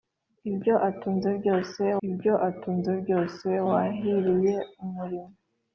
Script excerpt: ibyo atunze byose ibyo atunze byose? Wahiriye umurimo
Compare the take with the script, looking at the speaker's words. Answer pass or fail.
pass